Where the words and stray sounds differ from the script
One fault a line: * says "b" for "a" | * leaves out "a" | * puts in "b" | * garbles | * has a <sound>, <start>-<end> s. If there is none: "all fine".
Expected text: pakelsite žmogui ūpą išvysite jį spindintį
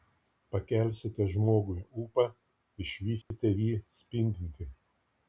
* has a dropout, 3.2-3.3 s